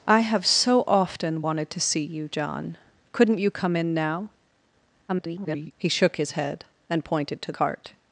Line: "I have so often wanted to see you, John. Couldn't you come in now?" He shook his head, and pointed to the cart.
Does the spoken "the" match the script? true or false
false